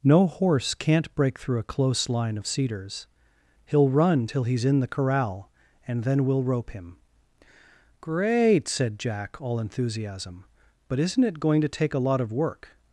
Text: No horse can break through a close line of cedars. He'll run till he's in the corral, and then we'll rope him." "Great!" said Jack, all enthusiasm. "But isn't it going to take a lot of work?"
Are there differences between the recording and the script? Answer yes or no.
yes